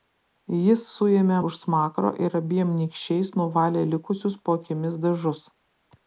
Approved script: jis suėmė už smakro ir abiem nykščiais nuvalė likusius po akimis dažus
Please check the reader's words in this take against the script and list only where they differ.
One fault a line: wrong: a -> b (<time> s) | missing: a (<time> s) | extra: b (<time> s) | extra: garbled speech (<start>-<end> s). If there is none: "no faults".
no faults